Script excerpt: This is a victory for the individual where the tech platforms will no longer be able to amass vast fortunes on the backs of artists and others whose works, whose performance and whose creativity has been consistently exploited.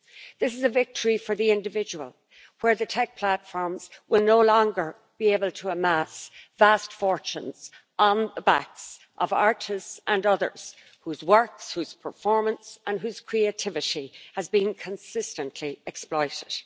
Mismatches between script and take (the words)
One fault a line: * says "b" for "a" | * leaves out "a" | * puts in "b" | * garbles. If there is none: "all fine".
all fine